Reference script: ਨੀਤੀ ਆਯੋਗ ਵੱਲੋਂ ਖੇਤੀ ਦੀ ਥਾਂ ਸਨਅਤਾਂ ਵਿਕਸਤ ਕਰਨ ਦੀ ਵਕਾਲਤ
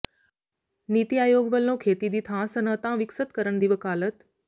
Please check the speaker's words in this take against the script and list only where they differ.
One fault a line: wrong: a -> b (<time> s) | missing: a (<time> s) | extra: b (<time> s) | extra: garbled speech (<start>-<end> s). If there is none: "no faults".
no faults